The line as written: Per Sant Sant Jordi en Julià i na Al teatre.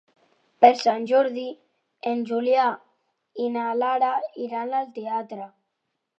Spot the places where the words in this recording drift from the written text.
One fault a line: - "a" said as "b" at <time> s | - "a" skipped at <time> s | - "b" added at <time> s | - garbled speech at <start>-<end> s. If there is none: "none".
- "Sant" skipped at 1.0 s
- "Lara iran" added at 3.8 s